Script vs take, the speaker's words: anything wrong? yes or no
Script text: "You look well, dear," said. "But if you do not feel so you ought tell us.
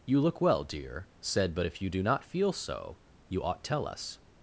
no